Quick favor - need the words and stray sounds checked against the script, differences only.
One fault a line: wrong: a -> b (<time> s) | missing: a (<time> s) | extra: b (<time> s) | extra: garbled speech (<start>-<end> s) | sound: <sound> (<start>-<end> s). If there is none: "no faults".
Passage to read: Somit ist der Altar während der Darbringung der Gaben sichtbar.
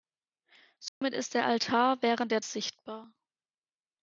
sound: dropout (0.9-1.0 s)
missing: Darbringung der Gaben (2.4 s)